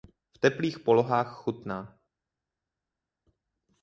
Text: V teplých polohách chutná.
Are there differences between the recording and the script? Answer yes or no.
no